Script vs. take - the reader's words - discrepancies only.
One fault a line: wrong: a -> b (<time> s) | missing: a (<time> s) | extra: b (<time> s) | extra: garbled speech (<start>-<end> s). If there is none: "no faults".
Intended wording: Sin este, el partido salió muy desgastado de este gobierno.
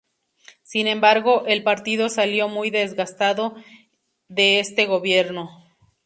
wrong: este -> embargo (0.9 s)